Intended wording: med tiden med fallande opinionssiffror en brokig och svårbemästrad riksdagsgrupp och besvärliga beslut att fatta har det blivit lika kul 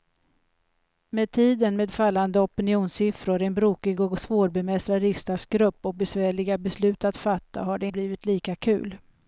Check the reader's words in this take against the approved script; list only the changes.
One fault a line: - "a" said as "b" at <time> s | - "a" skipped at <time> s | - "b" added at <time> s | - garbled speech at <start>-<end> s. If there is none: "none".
none